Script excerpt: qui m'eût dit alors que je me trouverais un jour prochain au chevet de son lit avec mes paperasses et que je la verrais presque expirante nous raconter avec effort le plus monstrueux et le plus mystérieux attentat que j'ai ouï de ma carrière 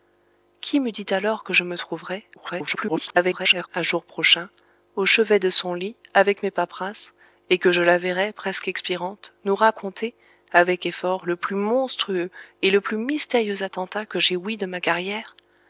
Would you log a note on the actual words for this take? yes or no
yes